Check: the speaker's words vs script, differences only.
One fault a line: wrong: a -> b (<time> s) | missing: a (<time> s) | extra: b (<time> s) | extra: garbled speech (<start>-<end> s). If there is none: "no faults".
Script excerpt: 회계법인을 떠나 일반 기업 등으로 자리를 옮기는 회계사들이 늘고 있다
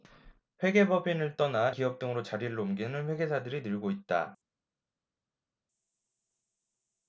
missing: 일반 (1.7 s)